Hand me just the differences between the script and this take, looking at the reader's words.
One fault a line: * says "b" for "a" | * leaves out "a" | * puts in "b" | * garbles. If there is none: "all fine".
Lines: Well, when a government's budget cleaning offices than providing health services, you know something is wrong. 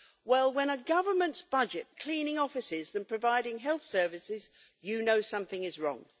all fine